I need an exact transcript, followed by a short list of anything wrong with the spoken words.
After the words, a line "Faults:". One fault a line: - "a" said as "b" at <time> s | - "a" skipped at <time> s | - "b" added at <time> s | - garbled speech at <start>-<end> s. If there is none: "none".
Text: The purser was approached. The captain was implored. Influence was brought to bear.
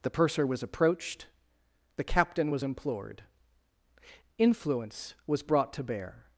The purser was approached. The captain was implored. Influence was brought to bear.
Faults:
none